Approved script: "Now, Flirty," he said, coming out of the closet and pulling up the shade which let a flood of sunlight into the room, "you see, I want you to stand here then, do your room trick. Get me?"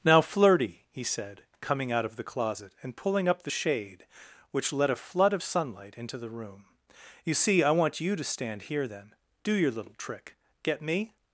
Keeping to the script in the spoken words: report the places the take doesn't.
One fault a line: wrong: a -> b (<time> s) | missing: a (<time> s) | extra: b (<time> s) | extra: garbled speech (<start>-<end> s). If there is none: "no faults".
wrong: room -> little (9.7 s)